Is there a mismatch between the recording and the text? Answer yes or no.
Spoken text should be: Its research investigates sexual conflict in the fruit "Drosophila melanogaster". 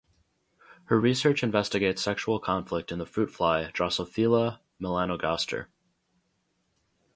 yes